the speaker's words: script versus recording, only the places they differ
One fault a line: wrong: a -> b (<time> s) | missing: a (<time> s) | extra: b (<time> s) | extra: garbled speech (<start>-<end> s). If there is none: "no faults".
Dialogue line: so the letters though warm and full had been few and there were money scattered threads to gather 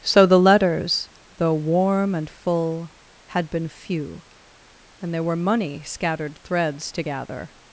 no faults